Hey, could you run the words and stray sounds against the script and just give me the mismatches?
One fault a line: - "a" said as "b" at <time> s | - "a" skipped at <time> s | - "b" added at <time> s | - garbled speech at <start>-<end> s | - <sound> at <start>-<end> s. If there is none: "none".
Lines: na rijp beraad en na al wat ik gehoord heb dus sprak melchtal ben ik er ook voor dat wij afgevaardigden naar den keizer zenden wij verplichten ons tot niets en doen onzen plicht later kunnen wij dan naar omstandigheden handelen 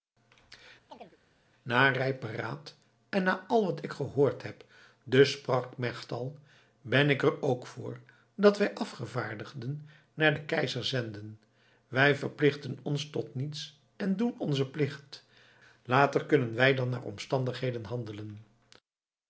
- chirp at 0.9-1.2 s